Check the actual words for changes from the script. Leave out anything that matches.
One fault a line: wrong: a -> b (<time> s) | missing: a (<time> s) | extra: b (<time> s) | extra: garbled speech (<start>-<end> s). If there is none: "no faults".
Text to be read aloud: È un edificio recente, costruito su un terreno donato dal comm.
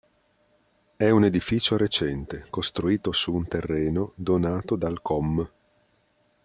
no faults